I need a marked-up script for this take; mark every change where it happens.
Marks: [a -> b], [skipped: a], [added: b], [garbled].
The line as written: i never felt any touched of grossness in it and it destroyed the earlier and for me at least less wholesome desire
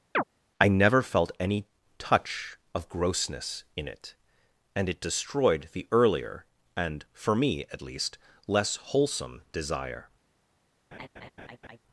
i never felt any [touched -> touch] of grossness in it and it destroyed the earlier and for me at least less wholesome desire